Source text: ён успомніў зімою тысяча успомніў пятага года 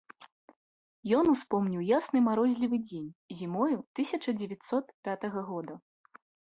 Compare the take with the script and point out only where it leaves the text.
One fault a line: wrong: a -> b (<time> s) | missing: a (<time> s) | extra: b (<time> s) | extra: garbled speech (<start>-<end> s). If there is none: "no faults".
extra: ясны марозлівы дзень (2.0 s)
wrong: успомніў -> дзевяцьсот (4.4 s)